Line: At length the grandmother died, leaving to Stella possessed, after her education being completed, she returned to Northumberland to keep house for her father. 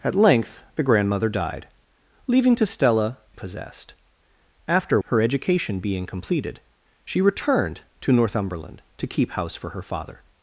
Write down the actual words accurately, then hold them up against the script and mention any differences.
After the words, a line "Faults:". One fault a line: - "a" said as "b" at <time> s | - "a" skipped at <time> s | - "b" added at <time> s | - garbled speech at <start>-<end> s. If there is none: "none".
At length the grandmother died, leaving to Stella possessed, after her education being completed, she returned to Northumberland to keep house for her father.
Faults:
none